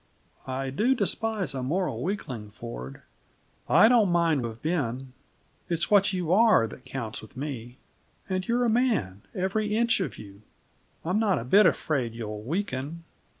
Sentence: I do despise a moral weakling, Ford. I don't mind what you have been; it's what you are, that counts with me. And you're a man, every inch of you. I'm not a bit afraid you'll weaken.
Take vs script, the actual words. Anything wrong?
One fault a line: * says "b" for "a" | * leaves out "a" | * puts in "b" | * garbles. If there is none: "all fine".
* leaves out "what you"